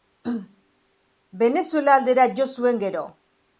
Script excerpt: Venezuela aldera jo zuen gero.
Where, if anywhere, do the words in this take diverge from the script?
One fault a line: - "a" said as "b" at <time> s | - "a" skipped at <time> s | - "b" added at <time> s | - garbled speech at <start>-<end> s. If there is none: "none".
none